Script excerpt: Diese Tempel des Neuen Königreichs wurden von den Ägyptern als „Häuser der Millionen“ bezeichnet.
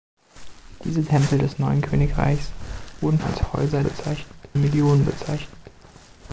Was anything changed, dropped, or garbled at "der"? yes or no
yes